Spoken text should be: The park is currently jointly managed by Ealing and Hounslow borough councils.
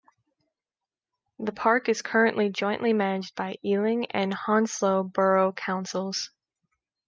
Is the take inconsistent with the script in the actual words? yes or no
no